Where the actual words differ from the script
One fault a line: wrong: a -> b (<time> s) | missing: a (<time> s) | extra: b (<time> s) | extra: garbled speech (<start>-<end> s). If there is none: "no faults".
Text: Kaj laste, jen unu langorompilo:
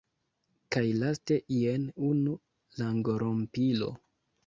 no faults